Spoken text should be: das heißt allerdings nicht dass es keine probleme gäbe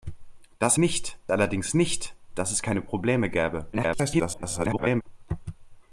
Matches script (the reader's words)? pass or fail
fail